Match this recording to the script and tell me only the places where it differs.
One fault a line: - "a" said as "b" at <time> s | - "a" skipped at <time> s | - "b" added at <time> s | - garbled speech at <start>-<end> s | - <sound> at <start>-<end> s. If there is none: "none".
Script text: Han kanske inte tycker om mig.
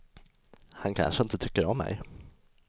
none